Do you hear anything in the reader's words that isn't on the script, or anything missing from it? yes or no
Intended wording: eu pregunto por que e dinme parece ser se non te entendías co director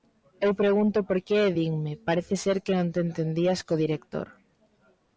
yes